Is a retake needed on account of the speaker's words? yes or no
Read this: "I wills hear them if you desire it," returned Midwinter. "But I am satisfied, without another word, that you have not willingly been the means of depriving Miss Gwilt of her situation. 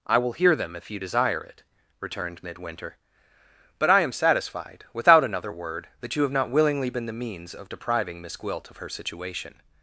yes